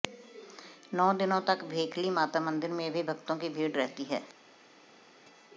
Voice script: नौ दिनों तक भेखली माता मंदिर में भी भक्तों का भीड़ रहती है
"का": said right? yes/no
no